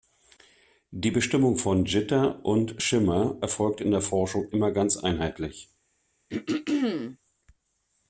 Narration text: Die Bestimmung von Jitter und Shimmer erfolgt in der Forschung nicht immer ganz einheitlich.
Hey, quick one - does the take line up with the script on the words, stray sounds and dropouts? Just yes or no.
no